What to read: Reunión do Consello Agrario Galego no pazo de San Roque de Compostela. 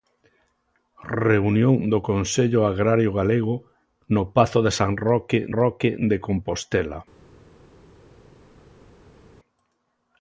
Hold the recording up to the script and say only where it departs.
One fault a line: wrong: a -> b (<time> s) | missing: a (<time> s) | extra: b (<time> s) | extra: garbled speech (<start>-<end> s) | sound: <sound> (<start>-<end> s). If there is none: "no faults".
extra: Roque (5.6 s)